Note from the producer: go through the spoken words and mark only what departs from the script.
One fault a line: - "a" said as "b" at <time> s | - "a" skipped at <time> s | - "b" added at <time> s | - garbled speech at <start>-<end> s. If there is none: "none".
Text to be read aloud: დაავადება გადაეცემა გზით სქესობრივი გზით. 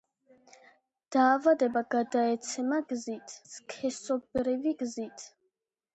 none